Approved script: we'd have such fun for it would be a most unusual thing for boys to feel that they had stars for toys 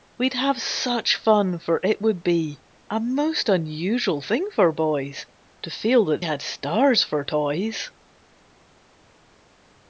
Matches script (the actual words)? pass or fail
fail